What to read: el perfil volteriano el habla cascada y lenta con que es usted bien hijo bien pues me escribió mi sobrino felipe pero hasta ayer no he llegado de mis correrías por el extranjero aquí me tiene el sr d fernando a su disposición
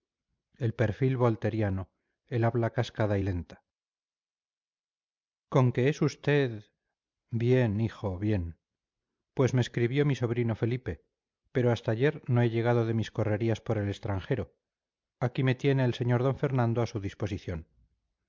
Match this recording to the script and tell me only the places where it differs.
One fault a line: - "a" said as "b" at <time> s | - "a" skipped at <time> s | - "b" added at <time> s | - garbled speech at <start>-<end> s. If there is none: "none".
none